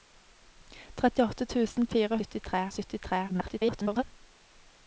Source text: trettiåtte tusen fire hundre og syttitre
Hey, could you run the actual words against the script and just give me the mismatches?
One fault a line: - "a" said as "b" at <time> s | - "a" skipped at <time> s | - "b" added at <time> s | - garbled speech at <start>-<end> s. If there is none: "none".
- "hundre" said as "syttitre" at 2.2 s
- garbled speech at 3.3-4.0 s